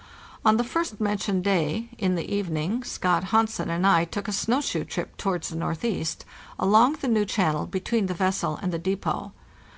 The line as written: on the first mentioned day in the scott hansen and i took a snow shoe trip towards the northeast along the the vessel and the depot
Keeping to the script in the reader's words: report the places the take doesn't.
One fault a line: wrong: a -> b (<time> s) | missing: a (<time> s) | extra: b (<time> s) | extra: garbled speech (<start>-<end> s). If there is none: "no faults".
extra: evening (2.3 s)
extra: new channel between (7.1 s)